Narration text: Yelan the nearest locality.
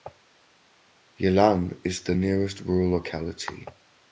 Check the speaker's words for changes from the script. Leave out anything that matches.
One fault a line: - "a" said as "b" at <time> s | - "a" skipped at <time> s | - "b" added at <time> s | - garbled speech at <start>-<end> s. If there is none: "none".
- "is" added at 1.8 s
- "rural" added at 2.6 s